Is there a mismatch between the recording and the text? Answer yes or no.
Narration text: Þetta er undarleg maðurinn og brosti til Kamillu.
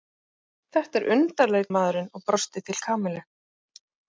no